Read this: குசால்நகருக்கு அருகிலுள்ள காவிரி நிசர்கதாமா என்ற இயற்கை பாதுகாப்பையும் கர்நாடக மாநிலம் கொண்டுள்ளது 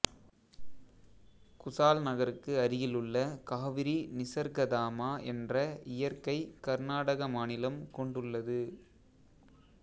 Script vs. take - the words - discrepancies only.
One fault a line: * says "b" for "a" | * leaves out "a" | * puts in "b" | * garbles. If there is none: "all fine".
* leaves out "பாதுகாப்பையும்"